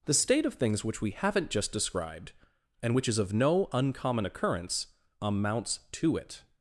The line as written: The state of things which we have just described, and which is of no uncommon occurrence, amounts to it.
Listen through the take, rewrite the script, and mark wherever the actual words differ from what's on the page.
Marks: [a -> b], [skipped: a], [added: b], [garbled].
The state of things which we [have -> haven't] just described, and which is of no uncommon occurrence, amounts to it.